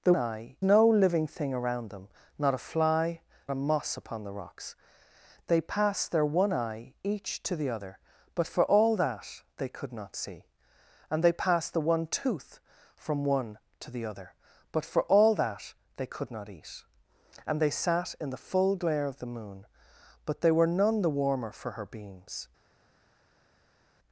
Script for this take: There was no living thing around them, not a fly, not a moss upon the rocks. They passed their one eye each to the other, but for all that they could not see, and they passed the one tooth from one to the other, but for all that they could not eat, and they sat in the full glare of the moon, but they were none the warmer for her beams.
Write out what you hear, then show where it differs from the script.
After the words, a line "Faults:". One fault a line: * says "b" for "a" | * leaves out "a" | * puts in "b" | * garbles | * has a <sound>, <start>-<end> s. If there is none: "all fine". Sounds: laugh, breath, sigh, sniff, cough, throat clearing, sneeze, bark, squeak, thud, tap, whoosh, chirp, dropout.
There eye no living thing around them, not a fly, a moss upon the rocks. They passed their one eye each to the other, but for all that they could not see, and they passed the one tooth from one to the other, but for all that they could not eat, and they sat in the full glare of the moon, but they were none the warmer for her beams.
Faults:
* says "eye" for "was"
* leaves out "not"